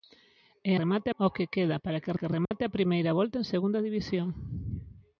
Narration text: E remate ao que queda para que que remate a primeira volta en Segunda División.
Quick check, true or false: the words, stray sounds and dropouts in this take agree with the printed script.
false